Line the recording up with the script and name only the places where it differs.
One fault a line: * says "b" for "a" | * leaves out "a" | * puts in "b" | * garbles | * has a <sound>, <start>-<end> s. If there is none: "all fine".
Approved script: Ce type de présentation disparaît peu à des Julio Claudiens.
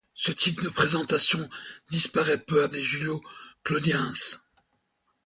all fine